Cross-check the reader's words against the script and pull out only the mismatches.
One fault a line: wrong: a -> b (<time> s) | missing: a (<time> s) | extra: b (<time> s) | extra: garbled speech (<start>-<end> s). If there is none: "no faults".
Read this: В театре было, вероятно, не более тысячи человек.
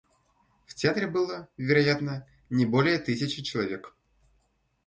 no faults